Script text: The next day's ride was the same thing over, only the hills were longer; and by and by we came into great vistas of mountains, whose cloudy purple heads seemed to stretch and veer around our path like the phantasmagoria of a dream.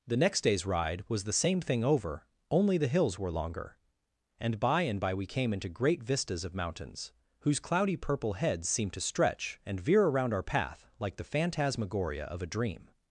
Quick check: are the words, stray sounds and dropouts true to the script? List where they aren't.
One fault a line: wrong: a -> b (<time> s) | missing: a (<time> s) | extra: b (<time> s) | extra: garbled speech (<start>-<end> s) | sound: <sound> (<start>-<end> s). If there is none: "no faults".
no faults